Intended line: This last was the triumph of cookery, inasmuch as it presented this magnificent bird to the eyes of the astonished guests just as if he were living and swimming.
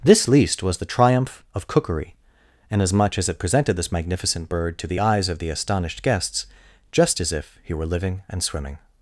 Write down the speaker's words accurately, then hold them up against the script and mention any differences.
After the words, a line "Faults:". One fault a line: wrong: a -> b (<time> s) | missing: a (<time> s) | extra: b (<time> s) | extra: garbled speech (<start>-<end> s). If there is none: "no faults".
This least was the triumph of cookery, inasmuch as it presented this magnificent bird to the eyes of the astonished guests just as if he were living and swimming.
Faults:
wrong: last -> least (0.3 s)